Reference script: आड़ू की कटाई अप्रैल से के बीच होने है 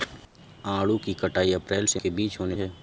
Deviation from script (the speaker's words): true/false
false